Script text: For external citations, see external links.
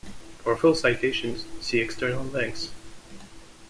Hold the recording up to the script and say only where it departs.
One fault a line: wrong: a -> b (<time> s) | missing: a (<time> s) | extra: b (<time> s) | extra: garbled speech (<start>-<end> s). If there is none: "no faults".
wrong: external -> full (0.5 s)